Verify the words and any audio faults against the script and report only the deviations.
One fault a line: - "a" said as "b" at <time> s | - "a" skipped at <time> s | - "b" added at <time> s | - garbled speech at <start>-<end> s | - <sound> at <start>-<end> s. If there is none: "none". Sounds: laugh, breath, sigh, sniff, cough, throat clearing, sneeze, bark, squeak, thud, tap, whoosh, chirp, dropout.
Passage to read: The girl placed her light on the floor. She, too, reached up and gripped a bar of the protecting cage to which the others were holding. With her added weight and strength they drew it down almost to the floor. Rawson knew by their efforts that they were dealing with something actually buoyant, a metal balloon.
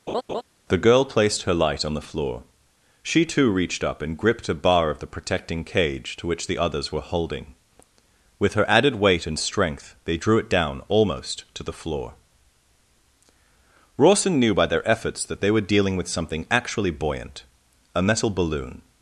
- laugh at 0.1-0.4 s